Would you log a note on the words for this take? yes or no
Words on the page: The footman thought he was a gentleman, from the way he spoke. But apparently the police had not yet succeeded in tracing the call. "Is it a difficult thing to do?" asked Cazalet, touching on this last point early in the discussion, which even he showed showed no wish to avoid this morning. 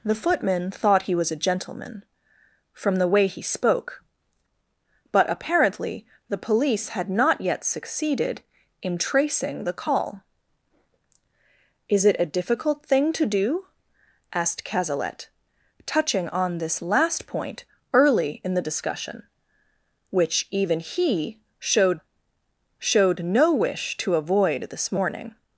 no